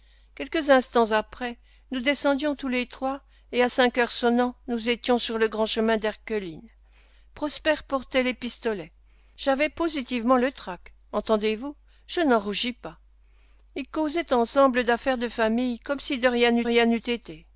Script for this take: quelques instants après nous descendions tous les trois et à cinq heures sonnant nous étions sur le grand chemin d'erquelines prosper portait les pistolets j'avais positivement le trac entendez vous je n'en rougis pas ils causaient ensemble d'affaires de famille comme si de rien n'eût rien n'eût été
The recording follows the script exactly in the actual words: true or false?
true